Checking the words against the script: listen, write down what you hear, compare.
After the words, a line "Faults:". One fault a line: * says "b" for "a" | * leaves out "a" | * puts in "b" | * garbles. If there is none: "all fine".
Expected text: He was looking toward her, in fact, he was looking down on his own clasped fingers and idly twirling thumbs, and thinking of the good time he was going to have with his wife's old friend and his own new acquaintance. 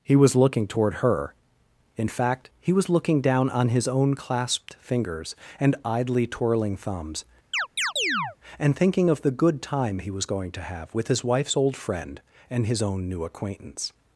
He was looking toward her, in fact, he was looking down on his own clasped fingers and idly twirling thumbs, and thinking of the good time he was going to have with his wife's old friend and his own new acquaintance.
Faults:
all fine